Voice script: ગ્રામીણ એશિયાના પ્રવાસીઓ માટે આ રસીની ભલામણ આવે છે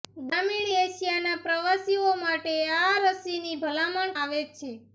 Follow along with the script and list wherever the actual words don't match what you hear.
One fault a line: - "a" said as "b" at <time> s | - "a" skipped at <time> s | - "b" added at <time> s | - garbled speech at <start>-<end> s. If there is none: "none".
none